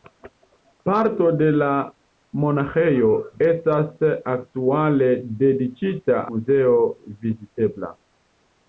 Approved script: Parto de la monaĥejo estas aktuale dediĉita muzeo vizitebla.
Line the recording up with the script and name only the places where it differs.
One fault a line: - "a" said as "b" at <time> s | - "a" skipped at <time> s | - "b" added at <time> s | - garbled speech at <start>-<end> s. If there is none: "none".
none